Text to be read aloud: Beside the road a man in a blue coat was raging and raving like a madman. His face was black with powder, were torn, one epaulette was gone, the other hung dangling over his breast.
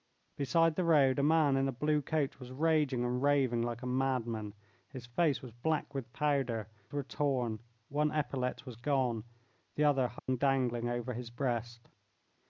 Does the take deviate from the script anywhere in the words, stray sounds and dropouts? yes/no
yes